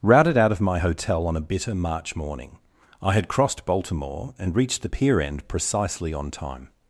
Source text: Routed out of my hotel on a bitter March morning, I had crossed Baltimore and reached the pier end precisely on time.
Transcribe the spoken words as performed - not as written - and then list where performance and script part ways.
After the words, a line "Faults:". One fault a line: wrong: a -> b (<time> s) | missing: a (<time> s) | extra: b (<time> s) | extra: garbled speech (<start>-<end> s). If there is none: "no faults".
Routed out of my hotel on a bitter March morning, I had crossed Baltimore and reached the pier end precisely on time.
Faults:
no faults